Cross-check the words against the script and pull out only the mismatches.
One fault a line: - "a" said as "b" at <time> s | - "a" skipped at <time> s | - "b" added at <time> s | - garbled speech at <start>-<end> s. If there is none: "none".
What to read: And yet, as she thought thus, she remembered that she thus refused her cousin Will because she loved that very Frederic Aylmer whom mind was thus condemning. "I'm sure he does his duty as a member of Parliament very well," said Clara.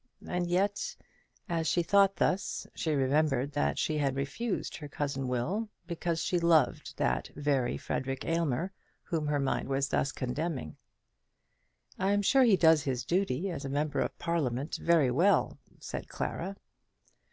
- "thus" said as "had" at 4.0 s
- "her" added at 9.3 s